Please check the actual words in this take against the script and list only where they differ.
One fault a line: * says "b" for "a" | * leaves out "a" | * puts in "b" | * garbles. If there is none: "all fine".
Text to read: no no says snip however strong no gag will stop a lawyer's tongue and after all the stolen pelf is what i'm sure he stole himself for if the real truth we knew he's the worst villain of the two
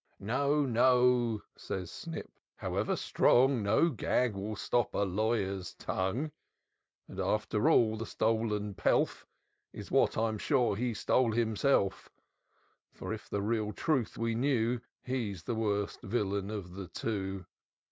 all fine